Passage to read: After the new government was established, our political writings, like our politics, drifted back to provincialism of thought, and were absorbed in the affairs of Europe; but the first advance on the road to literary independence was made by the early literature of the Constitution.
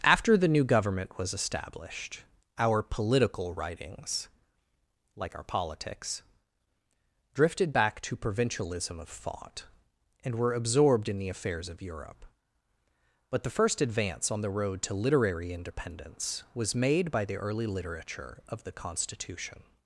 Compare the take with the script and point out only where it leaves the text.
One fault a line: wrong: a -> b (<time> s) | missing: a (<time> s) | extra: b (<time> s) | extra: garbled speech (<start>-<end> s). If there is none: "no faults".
no faults